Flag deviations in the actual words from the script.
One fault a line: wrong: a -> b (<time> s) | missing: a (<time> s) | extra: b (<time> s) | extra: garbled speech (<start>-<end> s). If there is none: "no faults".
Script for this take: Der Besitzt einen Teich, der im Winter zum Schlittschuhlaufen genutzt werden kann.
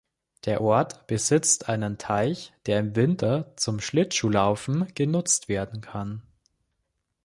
extra: Ort (0.6 s)